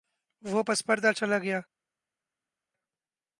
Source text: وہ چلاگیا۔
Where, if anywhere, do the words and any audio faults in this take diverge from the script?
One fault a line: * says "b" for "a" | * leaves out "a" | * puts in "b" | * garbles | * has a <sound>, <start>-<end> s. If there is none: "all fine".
* puts in "پس پردہ"